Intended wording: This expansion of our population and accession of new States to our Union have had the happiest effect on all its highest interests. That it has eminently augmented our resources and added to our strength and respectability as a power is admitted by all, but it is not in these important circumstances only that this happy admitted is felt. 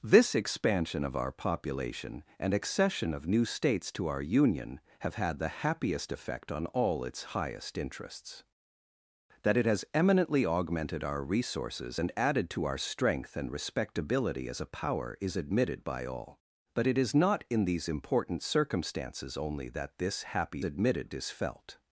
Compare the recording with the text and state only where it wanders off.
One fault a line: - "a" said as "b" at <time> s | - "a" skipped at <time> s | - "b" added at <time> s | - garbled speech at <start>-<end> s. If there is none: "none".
none